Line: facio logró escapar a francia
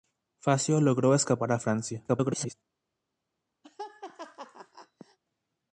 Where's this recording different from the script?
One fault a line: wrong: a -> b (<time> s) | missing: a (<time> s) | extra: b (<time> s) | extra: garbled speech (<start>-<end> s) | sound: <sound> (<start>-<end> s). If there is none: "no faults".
extra: garbled speech (2.1-2.5 s)
sound: laugh (3.6-5.2 s)